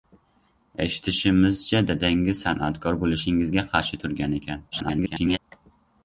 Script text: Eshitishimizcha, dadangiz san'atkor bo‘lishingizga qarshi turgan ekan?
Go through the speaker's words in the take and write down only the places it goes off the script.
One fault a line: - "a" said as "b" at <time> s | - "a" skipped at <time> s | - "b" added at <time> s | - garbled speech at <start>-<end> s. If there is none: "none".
- garbled speech at 4.7-5.4 s